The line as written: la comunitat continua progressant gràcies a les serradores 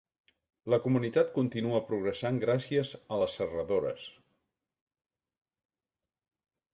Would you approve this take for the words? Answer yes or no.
yes